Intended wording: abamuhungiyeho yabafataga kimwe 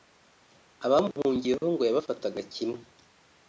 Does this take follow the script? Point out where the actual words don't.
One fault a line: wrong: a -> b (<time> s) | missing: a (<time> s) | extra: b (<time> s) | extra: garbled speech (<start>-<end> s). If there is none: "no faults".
extra: ngo (1.7 s)